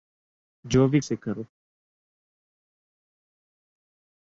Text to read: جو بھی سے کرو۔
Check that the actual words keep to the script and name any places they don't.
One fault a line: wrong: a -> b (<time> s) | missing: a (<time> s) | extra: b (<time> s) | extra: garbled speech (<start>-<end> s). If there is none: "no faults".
no faults